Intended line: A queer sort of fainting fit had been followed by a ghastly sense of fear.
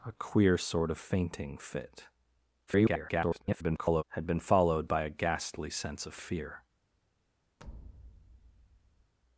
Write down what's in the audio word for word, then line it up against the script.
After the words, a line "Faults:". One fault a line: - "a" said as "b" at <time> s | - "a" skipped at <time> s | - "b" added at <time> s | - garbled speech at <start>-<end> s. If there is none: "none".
A queer sort of fainting fit [garbled] had been followed by a ghastly sense of fear.
Faults:
- garbled speech at 2.7-4.0 s